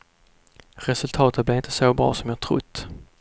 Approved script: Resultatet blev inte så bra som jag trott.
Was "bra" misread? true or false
false